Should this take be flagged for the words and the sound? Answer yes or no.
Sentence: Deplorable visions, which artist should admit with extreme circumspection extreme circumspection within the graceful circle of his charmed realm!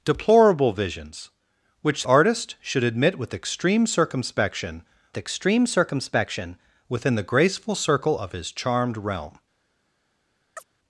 yes